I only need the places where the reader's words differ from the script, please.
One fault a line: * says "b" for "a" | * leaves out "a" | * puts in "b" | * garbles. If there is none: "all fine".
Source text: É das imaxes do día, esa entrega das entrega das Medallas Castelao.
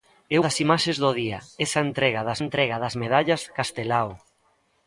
all fine